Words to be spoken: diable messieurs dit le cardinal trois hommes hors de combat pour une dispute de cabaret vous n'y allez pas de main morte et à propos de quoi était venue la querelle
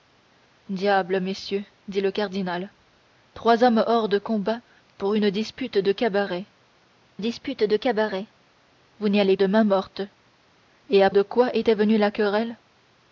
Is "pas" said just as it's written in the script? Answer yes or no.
no